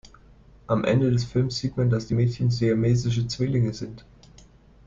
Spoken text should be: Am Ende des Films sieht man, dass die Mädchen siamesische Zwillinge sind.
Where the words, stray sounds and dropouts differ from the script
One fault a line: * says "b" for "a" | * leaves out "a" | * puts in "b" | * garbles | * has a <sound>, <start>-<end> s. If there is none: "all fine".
all fine